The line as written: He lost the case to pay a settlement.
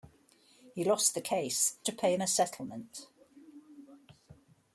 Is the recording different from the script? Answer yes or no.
no